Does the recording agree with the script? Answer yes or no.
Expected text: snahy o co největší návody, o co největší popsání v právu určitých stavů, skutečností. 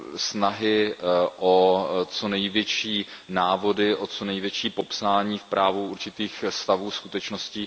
yes